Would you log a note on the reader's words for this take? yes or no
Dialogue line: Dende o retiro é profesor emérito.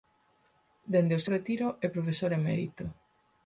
no